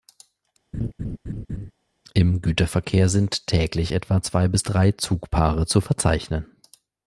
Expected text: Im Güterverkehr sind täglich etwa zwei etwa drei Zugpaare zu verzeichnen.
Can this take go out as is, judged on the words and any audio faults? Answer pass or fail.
fail